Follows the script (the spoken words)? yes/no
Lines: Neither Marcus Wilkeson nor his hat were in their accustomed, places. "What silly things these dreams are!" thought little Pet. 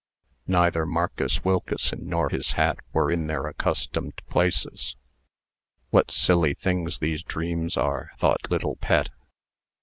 yes